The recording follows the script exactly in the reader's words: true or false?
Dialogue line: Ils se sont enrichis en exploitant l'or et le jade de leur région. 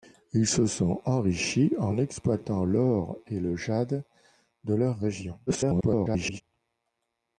false